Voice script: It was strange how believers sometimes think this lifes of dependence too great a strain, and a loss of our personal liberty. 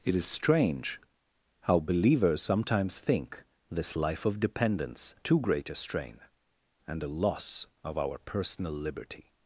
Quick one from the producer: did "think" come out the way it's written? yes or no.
yes